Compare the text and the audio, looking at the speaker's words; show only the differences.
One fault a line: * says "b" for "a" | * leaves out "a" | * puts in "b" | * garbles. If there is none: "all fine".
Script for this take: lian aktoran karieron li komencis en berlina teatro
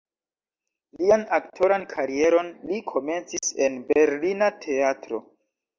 all fine